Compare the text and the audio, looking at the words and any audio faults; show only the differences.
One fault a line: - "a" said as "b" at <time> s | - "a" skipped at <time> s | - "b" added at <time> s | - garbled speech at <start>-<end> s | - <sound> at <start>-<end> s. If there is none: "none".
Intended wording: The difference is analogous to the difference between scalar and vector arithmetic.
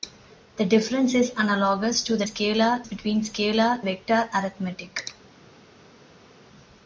- "difference" said as "scalar" at 2.2 s
- "and" skipped at 3.8 s